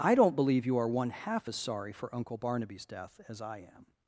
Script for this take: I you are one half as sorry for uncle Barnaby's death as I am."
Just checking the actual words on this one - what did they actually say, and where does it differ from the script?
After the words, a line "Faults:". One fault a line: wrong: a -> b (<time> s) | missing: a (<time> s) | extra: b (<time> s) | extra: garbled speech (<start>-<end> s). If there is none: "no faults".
I don't believe you are one half as sorry for uncle Barnaby's death as I am."
Faults:
extra: don't believe (0.1 s)